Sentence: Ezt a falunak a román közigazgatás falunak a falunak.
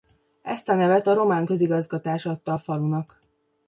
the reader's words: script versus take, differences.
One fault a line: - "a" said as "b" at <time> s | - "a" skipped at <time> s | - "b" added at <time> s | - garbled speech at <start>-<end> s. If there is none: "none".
- "falunak" said as "nevet" at 0.8 s
- "falunak" said as "adta" at 2.3 s